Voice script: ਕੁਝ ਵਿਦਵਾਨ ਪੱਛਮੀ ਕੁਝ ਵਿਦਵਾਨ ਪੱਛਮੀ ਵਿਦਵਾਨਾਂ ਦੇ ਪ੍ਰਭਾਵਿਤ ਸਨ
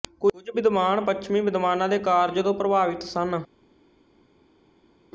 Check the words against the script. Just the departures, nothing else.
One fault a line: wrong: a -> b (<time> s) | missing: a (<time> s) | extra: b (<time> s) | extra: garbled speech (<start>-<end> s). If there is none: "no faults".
wrong: ਕੁਝ ਵਿਦਵਾਨ ਪੱਛਮੀ ਵਿਦਵਾਨਾਂ ਦੇ -> ਵਿਦਵਾਨਾਂ ਦੇ ਕਾਰਜ ਤੋਂ (1.4 s)